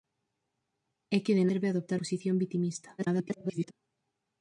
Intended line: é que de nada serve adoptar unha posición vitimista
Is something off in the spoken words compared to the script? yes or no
yes